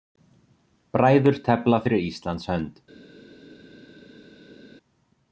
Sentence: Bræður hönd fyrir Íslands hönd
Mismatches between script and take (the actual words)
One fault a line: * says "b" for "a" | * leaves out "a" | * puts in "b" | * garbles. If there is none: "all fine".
* says "tefla" for "hönd"